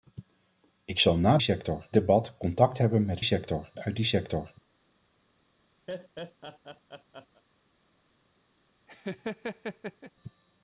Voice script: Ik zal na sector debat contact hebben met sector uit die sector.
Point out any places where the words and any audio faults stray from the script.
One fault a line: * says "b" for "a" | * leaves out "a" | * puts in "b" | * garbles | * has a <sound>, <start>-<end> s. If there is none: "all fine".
* has a laugh, 5.9-7.4 s
* has a laugh, 8.9-10.1 s